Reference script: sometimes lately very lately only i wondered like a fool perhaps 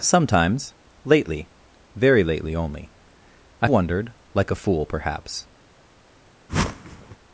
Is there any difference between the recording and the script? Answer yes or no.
no